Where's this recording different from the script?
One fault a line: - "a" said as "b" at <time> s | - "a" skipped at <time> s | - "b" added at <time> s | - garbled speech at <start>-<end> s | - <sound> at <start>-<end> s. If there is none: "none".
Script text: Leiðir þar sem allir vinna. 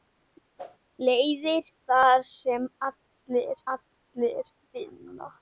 - whoosh at 0.6-0.8 s
- "allir" added at 3.8 s